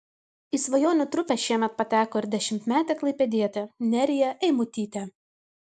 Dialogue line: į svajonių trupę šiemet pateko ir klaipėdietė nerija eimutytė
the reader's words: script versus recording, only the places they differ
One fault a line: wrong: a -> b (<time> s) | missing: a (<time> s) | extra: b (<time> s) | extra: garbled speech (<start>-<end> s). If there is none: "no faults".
extra: dešimtmetė (2.4 s)